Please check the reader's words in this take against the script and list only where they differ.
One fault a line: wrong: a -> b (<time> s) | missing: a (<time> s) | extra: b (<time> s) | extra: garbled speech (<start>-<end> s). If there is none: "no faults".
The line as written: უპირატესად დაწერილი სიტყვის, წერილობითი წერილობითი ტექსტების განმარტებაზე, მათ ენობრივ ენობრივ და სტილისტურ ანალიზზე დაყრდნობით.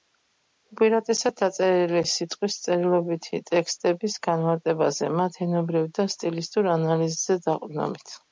missing: წერილობითი (3.4 s)
missing: ენობრივ (5.9 s)